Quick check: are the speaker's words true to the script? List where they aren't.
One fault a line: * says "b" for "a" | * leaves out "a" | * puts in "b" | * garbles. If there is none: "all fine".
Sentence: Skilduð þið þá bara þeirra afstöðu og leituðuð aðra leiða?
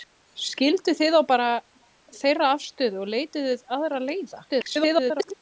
* garbles